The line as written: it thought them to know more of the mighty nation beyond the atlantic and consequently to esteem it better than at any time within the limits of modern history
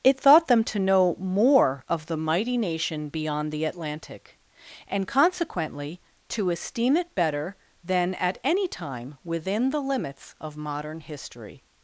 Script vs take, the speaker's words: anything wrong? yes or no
no